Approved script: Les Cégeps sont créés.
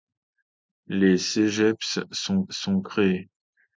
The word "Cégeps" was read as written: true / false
true